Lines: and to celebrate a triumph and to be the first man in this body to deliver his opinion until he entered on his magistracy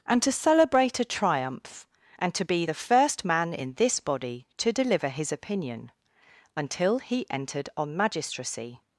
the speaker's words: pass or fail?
fail